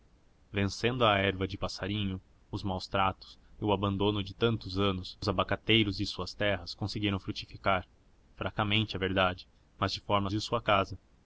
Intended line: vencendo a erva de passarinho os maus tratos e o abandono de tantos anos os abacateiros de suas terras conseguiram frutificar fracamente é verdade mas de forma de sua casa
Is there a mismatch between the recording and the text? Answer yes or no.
no